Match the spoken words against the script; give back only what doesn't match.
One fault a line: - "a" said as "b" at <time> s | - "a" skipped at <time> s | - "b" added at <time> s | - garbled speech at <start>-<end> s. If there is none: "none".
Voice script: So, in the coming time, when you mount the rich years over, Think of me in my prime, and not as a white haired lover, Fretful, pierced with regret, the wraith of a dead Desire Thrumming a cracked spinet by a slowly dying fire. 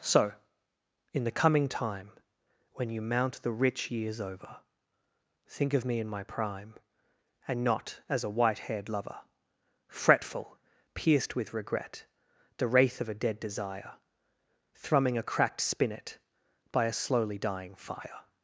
none